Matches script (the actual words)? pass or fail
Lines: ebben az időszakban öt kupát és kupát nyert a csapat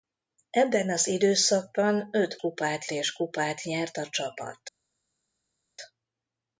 pass